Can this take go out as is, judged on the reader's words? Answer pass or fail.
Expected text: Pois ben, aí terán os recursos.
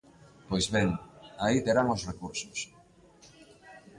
pass